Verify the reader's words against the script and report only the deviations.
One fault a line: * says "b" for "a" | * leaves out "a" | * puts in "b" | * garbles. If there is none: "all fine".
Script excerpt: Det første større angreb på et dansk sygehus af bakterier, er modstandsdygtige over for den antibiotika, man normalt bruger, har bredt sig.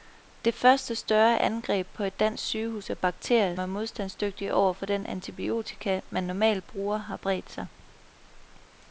all fine